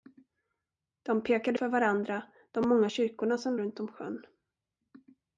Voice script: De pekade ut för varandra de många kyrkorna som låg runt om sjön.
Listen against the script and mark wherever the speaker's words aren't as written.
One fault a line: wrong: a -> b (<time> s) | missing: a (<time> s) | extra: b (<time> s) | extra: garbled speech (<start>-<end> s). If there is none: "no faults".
missing: ut (1.6 s)
missing: låg (3.6 s)